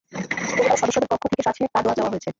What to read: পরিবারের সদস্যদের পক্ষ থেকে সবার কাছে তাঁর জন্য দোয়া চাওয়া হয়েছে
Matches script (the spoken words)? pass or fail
fail